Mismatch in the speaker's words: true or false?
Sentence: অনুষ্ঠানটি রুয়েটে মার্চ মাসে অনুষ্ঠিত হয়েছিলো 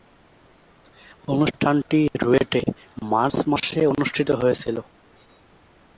false